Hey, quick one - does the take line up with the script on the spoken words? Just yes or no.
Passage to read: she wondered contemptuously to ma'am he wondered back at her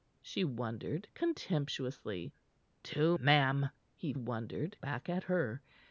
yes